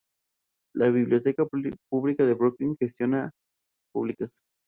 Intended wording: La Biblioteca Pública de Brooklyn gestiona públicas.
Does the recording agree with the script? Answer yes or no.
yes